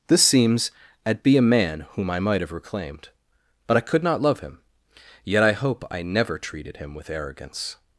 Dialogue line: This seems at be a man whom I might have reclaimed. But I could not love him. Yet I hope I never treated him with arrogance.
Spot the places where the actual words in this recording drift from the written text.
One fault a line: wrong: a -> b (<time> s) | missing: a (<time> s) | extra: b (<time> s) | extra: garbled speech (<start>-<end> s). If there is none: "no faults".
no faults